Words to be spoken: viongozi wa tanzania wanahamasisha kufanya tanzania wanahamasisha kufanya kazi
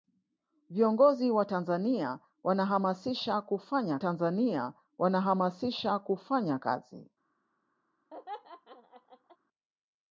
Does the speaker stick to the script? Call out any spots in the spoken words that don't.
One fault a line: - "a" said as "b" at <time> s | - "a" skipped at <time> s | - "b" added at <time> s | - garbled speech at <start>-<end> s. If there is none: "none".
none